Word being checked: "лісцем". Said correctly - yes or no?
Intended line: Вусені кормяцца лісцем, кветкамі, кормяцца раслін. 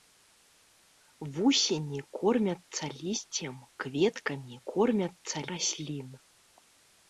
yes